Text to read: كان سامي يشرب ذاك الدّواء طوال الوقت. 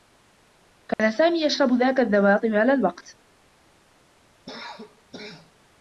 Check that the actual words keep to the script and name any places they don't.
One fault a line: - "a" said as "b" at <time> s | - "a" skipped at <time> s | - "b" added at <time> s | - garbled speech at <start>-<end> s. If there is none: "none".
none